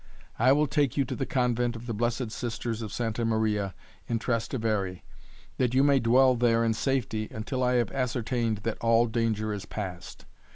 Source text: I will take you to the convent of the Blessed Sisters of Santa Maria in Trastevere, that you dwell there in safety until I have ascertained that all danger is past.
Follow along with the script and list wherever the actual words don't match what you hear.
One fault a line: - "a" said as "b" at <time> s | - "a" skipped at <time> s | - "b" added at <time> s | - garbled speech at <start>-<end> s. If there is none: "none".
- "may" added at 5.8 s